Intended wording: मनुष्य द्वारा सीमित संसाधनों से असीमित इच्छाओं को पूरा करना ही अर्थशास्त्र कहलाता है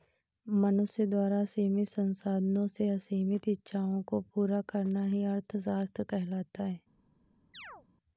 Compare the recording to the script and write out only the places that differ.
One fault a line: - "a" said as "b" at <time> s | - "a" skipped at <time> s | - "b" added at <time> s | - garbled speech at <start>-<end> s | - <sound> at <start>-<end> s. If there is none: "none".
- chirp at 7.5-7.9 s